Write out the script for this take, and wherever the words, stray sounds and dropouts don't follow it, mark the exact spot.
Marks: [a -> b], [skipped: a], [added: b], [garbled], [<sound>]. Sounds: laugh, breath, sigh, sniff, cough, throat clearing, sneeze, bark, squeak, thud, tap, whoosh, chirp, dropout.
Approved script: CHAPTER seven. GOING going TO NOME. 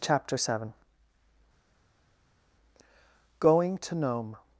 CHAPTER seven. GOING [skipped: going] TO NOME.